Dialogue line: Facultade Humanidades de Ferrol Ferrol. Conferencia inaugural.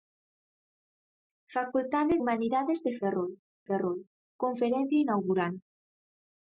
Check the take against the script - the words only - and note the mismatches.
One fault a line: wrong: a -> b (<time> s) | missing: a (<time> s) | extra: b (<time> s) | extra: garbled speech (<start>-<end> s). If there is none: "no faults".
no faults